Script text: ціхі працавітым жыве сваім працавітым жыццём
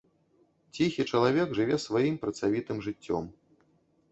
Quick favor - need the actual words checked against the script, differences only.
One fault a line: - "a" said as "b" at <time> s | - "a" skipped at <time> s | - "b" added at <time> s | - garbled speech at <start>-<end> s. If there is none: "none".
- "працавітым" said as "чалавек" at 1.1 s